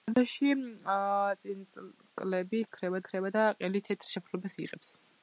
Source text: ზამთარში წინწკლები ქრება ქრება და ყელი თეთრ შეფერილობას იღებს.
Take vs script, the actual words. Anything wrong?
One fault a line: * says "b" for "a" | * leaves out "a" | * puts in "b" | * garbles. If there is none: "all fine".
all fine